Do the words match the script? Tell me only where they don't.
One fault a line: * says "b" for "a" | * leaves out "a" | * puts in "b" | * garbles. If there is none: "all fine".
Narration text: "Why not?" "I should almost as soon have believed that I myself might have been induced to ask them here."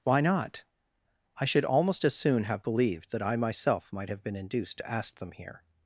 all fine